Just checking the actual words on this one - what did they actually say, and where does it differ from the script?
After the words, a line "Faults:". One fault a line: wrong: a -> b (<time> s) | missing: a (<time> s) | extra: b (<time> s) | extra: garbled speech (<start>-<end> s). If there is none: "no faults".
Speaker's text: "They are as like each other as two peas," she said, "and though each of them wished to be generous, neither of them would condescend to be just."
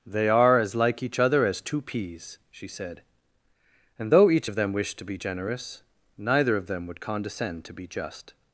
"They are as like each other as two peas," she said, "and though each of them wished to be generous, neither of them would condescend to be just."
Faults:
no faults